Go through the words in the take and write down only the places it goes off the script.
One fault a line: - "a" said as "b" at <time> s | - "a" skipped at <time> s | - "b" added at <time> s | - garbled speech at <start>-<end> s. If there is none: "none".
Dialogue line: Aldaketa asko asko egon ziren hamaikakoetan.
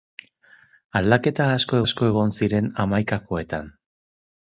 none